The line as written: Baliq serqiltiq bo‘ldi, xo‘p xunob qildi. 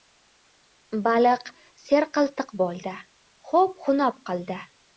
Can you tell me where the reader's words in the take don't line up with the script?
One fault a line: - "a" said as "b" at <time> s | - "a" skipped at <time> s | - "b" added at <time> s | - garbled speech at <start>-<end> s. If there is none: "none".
none